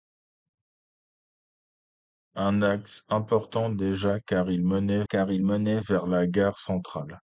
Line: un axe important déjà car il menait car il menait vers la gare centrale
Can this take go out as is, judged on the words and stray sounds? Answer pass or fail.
pass